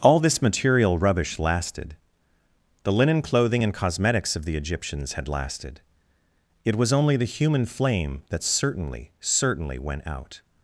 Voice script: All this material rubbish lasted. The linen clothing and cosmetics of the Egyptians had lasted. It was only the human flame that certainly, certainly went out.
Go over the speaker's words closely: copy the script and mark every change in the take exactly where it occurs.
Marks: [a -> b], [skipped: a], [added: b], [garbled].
All this material rubbish lasted. The linen clothing and cosmetics of the Egyptians had lasted. It was only the human flame that certainly, certainly went out.